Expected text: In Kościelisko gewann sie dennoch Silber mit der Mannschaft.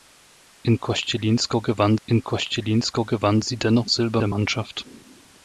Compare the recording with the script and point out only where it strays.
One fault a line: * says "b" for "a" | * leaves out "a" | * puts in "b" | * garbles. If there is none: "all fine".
* puts in "in Kościelisko gewann"
* leaves out "mit"